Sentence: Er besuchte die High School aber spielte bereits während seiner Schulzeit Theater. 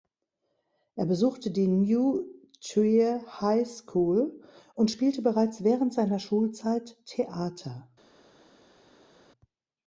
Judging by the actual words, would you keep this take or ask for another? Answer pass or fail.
fail